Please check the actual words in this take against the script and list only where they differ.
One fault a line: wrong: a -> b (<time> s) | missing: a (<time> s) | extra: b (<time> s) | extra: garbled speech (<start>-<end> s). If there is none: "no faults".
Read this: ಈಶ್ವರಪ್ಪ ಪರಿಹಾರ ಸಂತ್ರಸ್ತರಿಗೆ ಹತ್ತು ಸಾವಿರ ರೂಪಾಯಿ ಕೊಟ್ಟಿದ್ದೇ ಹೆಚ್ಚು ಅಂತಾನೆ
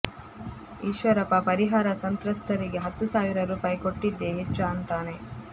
no faults